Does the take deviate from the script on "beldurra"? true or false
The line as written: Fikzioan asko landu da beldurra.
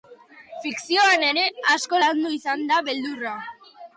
false